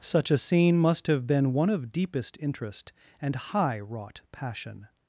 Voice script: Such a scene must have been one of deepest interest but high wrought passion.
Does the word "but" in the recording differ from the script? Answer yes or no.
yes